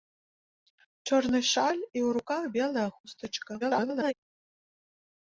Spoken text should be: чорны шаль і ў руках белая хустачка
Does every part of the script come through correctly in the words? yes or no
no